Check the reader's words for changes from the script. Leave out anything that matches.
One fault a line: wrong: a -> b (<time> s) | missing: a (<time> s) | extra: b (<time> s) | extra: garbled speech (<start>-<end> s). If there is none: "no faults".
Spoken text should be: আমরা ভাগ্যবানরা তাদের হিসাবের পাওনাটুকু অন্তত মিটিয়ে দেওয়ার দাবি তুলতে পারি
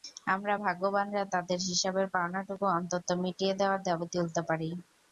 no faults